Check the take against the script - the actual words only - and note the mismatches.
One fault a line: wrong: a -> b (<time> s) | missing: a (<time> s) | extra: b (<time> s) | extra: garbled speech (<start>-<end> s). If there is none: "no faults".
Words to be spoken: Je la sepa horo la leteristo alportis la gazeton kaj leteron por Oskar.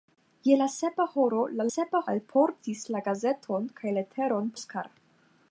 wrong: leteristo -> sepa (1.7 s)
missing: por (4.5 s)